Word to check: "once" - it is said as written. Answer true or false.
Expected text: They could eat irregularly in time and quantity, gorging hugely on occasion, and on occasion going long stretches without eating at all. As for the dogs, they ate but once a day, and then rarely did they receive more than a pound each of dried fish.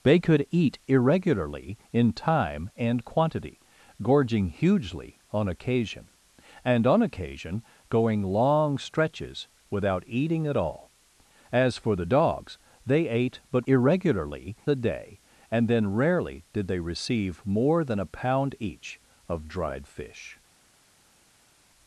false